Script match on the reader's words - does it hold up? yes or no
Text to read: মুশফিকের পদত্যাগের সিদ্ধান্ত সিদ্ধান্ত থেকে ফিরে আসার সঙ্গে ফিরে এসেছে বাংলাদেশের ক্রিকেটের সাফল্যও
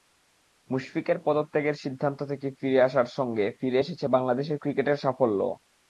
no